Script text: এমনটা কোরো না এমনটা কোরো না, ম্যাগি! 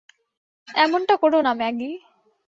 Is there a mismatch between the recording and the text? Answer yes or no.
yes